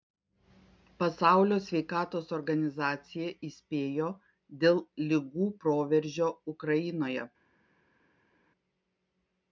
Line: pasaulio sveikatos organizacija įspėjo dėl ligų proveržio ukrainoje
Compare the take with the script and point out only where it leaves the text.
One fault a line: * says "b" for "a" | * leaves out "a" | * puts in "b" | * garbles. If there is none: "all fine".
all fine